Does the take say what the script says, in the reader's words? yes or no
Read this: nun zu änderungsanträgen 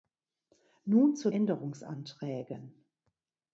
yes